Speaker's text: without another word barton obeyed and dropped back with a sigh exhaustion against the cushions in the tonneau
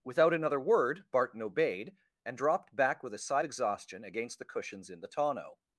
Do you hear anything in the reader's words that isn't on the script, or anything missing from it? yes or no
no